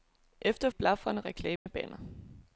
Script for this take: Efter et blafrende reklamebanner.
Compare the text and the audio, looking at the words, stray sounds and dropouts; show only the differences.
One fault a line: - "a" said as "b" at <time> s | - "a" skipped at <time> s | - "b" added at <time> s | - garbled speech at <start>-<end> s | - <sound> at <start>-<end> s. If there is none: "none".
- dropout at 1.6-1.7 s